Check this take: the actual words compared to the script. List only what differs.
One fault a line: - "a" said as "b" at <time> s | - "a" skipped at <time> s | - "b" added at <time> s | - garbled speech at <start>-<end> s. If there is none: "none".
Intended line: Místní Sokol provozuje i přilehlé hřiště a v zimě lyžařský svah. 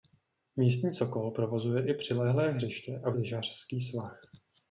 - "zimě" skipped at 3.2 s